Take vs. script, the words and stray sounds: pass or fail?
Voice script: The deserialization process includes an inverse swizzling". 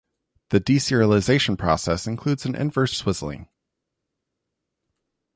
pass